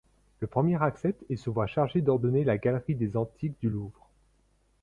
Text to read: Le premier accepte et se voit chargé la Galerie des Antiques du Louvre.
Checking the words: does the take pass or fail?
fail